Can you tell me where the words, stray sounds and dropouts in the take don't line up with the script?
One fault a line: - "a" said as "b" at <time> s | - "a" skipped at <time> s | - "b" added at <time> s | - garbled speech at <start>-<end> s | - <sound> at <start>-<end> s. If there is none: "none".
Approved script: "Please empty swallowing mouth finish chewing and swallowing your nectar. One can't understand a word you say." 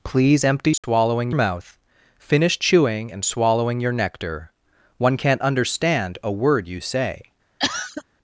- dropout at 0.8-0.8 s
- cough at 7.6-8.0 s